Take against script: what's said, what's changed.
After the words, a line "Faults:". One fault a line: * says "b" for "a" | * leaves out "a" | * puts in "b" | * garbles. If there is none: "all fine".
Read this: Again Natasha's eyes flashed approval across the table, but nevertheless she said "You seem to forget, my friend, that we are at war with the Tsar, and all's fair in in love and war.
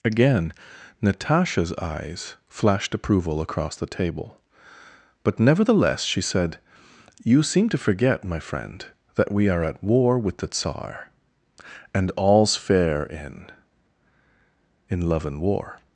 Again Natasha's eyes flashed approval across the table, but nevertheless she said "You seem to forget, my friend, that we are at war with the Tsar, and all's fair in in love and war.
Faults:
all fine